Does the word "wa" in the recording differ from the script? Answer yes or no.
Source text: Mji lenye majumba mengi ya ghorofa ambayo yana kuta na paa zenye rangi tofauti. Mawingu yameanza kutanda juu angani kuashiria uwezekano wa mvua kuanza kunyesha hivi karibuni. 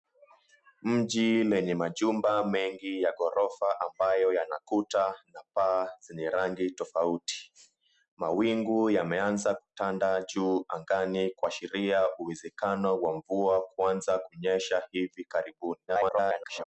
no